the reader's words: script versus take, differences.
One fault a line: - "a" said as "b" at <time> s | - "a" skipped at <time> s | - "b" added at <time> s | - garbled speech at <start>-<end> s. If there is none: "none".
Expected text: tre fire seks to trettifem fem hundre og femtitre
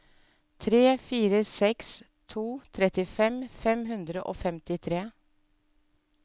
none